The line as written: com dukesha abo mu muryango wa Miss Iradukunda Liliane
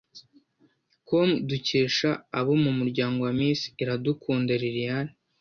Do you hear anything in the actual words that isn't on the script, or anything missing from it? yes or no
no